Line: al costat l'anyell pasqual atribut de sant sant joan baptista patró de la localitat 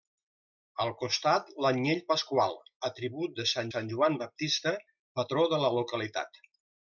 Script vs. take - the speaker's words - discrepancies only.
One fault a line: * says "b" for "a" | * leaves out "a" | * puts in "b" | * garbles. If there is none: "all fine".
all fine